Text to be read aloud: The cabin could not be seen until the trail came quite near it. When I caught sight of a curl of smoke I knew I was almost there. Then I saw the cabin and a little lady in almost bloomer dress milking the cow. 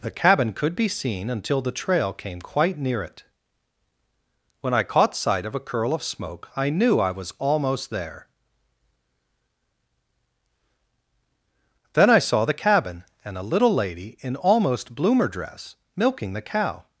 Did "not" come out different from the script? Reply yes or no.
yes